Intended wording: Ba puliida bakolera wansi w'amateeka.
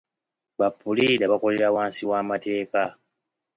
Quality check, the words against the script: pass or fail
pass